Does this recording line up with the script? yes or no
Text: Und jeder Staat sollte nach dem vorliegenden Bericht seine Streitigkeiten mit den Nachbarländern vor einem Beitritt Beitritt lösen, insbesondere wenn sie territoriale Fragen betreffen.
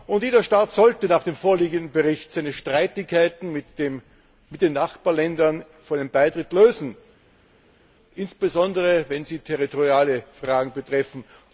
no